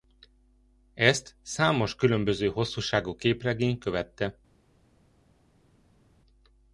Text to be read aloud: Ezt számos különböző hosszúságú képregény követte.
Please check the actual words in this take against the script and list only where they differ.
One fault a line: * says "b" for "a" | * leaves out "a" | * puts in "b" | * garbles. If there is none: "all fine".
all fine